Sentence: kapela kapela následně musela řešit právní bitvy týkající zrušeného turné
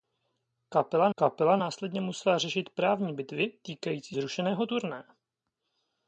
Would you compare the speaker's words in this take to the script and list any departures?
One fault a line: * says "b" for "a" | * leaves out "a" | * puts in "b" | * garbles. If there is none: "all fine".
all fine